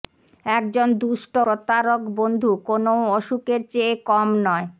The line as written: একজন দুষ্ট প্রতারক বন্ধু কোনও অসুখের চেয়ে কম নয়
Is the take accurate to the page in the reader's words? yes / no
yes